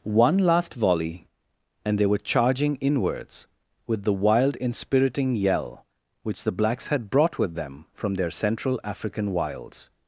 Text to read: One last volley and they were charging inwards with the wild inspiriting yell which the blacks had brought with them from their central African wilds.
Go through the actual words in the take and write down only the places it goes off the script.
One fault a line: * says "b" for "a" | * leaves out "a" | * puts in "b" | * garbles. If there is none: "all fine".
all fine